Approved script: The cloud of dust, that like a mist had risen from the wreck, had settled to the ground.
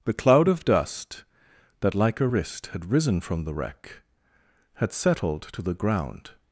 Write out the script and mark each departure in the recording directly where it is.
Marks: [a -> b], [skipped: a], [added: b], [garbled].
The cloud of dust, that like a [mist -> wrist] had risen from the wreck, had settled to the ground.